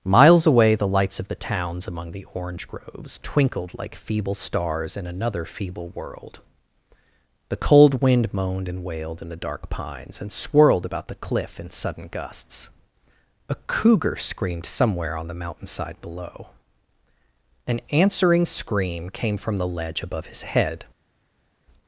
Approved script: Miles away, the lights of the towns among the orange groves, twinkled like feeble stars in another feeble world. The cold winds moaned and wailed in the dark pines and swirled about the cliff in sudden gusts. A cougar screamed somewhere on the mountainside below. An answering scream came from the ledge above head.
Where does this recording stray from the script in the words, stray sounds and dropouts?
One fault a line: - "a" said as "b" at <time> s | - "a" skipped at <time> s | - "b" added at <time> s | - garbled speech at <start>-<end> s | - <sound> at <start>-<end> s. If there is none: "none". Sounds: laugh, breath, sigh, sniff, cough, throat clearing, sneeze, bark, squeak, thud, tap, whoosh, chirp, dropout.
- "winds" said as "wind" at 8.0 s
- "his" added at 20.3 s